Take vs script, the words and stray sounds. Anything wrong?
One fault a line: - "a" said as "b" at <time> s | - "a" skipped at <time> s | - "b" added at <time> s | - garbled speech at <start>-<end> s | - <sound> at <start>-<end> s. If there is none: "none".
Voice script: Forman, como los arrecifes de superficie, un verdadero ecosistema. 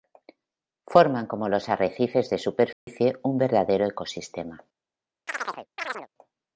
- dropout at 2.7-2.9 s
- chirp at 5.3-6.1 s